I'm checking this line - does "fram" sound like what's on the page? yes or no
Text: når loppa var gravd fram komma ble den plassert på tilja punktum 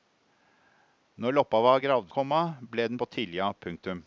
no